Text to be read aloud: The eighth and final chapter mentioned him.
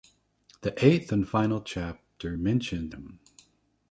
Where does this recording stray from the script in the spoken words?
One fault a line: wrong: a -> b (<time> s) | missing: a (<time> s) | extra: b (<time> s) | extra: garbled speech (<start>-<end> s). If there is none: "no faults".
no faults